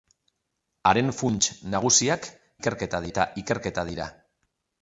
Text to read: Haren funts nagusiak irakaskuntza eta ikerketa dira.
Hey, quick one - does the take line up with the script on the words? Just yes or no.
no